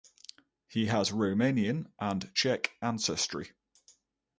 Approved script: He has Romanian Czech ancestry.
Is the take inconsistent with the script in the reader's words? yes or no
yes